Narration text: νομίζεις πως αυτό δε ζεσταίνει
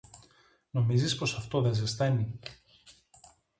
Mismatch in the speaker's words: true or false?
false